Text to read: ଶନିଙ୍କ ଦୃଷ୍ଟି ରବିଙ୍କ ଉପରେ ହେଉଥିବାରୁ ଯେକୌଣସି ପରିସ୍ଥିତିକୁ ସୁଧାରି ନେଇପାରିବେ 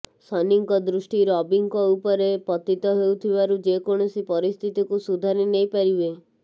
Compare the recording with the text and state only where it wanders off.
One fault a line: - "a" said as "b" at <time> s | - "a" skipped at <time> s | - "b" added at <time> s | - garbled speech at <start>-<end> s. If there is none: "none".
- "ପତିତ" added at 2.5 s